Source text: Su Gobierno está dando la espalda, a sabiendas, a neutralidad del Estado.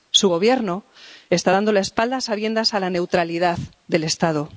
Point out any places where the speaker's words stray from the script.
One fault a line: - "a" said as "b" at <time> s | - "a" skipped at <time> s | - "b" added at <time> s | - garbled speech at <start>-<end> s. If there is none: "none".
- "la" added at 2.8 s